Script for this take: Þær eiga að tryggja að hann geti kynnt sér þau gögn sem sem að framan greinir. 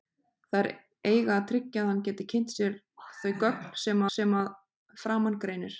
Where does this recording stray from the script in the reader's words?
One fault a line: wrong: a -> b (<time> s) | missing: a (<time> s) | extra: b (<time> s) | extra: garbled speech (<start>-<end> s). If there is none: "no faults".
no faults